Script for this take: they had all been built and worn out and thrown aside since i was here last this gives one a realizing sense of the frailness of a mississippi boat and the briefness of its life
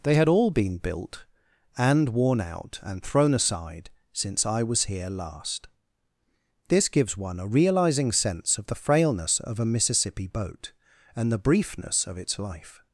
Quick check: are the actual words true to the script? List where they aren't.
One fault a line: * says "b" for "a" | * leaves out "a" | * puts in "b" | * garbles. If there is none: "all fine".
all fine